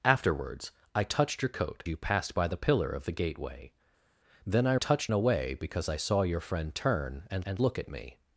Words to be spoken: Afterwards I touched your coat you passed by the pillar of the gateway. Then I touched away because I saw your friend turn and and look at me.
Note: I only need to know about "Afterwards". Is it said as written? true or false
true